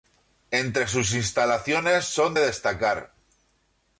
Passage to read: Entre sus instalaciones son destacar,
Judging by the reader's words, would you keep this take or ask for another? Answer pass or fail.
pass